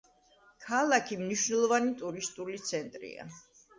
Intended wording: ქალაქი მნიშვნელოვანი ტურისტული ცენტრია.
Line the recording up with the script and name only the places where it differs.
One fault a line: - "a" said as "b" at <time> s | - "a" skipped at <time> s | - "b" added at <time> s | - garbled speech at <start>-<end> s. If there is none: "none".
none